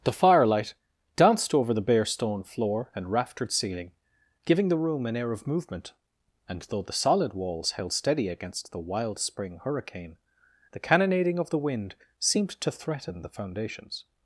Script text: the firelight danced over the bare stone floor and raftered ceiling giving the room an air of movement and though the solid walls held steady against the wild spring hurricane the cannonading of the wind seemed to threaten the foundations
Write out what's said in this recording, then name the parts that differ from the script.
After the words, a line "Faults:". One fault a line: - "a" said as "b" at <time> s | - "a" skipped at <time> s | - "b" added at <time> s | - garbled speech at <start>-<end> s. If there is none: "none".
the firelight danced over the bare stone floor and raftered ceiling giving the room an air of movement and though the solid walls held steady against the wild spring hurricane the cannonading of the wind seemed to threaten the foundations
Faults:
none